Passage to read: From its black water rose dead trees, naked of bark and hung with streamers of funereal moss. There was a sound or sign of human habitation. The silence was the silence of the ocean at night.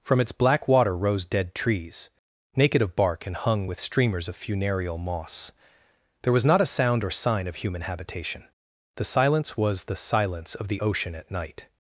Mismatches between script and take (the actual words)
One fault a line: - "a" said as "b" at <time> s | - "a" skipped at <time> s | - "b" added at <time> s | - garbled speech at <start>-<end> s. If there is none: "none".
- "not" added at 6.4 s